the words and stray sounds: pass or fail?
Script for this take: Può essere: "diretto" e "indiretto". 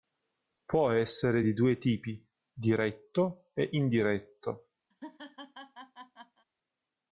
fail